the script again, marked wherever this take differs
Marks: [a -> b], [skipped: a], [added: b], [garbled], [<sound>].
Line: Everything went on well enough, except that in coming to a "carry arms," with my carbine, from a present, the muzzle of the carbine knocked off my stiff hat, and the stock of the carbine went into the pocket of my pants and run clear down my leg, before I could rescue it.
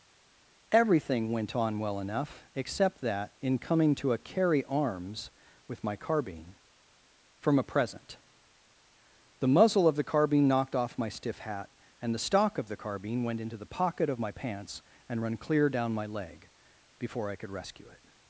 Everything went on well enough, except that in coming to a "carry arms," with my carbine, from a present, the muzzle of the carbine knocked off my stiff hat, and the stock of the carbine went into the pocket of my pants and run clear down my leg, before I could rescue it.